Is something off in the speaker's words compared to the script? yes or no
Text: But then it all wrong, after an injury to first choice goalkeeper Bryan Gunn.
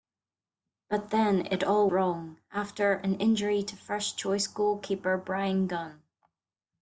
no